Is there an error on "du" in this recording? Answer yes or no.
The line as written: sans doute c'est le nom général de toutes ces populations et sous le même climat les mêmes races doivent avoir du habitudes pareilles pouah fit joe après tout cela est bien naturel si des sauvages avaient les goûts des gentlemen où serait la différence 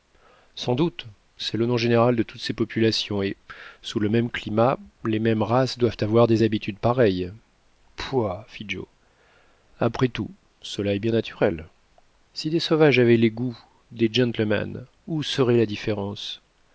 yes